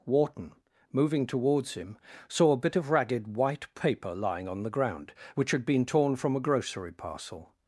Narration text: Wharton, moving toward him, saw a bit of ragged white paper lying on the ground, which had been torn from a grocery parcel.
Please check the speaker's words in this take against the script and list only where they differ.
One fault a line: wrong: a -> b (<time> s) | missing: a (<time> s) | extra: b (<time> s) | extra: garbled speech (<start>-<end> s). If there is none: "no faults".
wrong: toward -> towards (1.3 s)